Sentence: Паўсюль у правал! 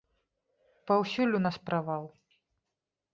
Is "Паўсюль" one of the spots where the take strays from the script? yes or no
no